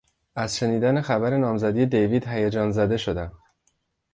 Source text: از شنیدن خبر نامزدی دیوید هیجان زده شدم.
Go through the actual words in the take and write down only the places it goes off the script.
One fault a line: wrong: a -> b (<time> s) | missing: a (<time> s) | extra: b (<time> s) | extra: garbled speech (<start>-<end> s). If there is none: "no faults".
no faults